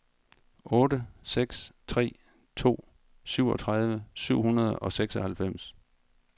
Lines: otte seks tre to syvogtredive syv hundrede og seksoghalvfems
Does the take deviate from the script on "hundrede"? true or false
false